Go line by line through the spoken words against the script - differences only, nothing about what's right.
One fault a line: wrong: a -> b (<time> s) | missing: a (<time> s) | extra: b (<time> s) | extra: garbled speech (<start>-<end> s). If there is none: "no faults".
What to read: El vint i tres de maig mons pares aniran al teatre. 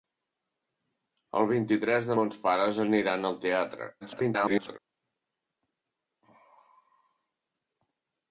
missing: maig (2.2 s)
extra: garbled speech (4.0-4.8 s)